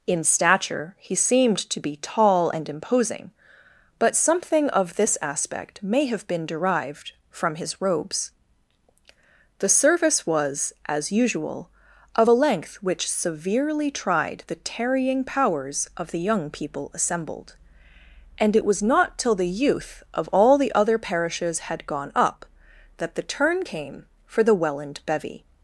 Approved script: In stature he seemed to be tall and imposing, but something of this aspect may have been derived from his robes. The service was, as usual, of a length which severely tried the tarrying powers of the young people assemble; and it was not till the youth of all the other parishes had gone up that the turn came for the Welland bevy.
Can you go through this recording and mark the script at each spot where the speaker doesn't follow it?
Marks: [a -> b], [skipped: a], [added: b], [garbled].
In stature he seemed to be tall and imposing, but something of this aspect may have been derived from his robes. The service was, as usual, of a length which severely tried the tarrying powers of the young people [assemble; -> assembled] and it was not till the youth of all the other parishes had gone up that the turn came for the Welland bevy.